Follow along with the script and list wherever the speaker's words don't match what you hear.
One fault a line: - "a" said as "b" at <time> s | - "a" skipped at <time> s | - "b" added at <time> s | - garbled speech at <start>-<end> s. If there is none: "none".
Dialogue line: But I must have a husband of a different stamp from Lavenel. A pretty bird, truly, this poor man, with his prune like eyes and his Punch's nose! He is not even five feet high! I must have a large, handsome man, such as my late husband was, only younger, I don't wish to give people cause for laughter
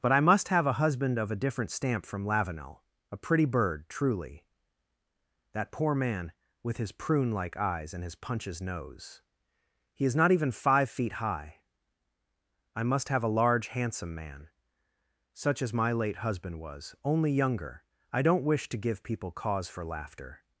- "this" said as "that" at 5.5 s